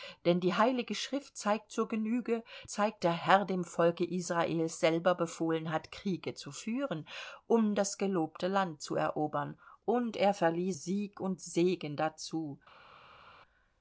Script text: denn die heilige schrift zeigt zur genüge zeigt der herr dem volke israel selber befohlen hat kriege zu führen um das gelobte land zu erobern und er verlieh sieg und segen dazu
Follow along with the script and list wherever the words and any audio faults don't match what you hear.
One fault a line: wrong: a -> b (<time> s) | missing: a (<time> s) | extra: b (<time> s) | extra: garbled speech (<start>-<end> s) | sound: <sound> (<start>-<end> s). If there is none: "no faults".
no faults